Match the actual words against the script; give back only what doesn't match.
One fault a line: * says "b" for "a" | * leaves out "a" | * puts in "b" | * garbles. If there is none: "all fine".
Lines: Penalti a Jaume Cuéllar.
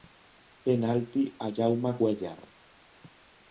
all fine